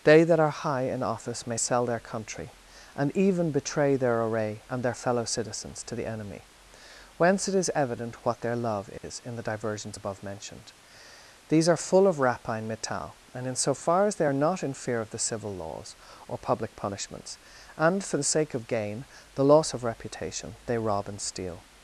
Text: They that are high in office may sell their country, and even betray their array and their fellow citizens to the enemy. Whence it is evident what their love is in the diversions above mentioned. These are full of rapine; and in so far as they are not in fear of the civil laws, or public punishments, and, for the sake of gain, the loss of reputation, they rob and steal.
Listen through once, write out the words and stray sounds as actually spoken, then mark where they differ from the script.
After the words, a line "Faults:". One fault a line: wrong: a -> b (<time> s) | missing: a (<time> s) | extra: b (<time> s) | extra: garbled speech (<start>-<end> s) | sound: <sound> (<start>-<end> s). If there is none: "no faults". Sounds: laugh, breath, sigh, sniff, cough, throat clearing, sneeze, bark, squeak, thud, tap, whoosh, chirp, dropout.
They that are high in office may sell their country, and even betray their array and their fellow citizens to the enemy. Whence it is evident what their love is in the diversions above mentioned. These are full of rapine; metal and in so far as they are not in fear of the civil laws, or public punishments, and, for the sake of gain, the loss of reputation, they rob and steal.
Faults:
sound: dropout (9.0-9.0 s)
extra: metal (12.7 s)